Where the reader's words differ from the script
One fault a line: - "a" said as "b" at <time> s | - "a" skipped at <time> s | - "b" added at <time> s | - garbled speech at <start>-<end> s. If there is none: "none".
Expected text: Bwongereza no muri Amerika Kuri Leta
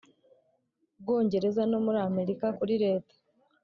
none